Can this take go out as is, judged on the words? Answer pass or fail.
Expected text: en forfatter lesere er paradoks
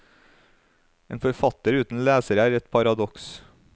fail